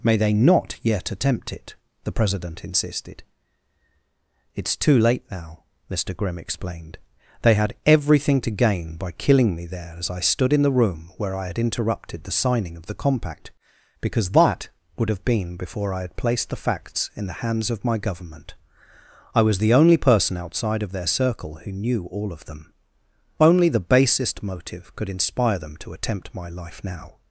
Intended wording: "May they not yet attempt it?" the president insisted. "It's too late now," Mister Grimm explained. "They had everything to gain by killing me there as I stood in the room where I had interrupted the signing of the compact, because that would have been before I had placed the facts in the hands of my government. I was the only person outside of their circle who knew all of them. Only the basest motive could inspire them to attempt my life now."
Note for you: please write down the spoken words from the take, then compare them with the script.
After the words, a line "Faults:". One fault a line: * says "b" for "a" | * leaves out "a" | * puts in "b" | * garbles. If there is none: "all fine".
"May they not yet attempt it?" the president insisted. "It's too late now," Mister Grimm explained. "They had everything to gain by killing me there as I stood in the room where I had interrupted the signing of the compact, because that would have been before I had placed the facts in the hands of my government. I was the only person outside of their circle who knew all of them. Only the basest motive could inspire them to attempt my life now."
Faults:
all fine